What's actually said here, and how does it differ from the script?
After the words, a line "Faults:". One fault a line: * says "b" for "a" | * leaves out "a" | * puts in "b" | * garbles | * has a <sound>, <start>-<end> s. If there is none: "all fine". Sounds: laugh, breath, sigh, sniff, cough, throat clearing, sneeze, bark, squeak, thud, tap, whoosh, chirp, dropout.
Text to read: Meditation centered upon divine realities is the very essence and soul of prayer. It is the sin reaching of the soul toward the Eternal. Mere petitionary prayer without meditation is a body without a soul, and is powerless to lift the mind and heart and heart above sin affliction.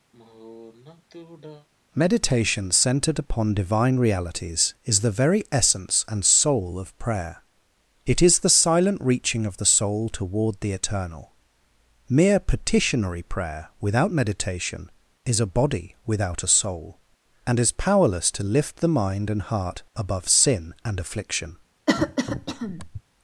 Meditation centered upon divine realities is the very essence and soul of prayer. It is the silent reaching of the soul toward the Eternal. Mere petitionary prayer without meditation is a body without a soul, and is powerless to lift the mind and heart above sin and affliction.
Faults:
* has a sigh, 0.1-1.7 s
* says "silent" for "sin"
* leaves out "and heart"
* puts in "and"
* has a cough, 21.9-23.0 s